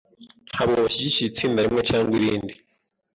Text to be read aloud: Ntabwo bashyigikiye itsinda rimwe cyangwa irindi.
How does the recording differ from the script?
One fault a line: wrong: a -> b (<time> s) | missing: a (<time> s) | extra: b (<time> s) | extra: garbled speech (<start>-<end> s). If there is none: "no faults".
no faults